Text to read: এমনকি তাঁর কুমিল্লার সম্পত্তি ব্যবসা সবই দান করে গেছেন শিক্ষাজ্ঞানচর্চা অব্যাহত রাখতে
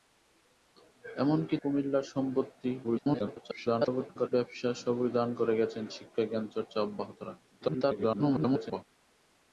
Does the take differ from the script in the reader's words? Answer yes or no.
yes